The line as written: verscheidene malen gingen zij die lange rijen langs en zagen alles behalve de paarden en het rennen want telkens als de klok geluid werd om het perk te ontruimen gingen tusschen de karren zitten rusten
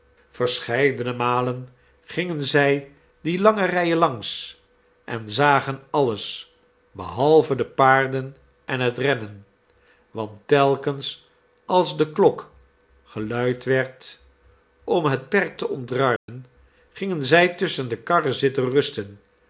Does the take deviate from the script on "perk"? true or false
false